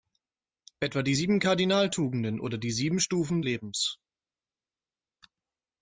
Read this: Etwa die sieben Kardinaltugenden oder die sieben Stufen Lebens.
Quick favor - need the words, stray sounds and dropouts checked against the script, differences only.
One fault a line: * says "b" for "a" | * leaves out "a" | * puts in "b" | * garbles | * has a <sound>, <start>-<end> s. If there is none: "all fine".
all fine